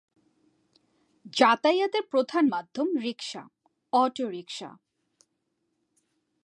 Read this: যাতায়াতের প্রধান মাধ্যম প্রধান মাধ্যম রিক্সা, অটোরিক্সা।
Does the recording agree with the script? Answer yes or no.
no